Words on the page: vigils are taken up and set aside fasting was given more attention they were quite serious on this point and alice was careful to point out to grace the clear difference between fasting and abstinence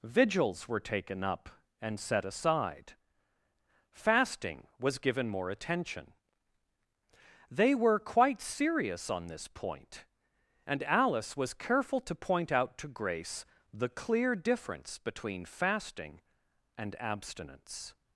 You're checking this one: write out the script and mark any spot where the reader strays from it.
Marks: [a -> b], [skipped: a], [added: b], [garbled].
vigils [are -> were] taken up and set aside fasting was given more attention they were quite serious on this point and alice was careful to point out to grace the clear difference between fasting and abstinence